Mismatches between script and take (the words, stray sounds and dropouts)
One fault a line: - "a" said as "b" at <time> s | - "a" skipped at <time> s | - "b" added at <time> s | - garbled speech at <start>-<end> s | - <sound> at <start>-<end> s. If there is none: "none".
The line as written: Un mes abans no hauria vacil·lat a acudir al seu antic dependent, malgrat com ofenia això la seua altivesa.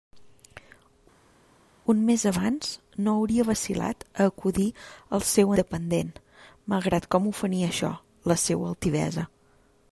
- "antic" skipped at 5.6 s